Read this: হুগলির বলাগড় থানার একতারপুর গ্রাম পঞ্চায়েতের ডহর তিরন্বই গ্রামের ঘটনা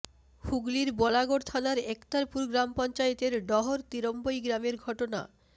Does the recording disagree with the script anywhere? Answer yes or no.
no